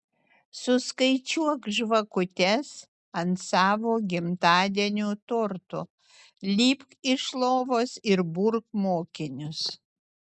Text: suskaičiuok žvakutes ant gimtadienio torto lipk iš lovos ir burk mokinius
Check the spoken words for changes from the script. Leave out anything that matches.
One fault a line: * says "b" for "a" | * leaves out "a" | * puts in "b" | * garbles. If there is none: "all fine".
* puts in "savo"